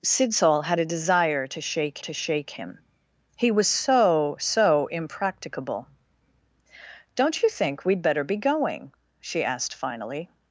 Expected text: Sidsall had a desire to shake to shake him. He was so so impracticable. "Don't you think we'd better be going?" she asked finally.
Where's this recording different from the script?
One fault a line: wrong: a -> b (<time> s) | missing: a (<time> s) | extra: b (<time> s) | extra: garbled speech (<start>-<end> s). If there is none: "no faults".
no faults